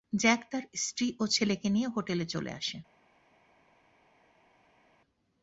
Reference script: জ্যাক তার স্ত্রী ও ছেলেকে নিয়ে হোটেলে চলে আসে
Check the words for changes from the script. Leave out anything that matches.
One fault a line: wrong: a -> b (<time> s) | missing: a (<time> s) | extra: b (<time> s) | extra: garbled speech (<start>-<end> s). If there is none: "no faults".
no faults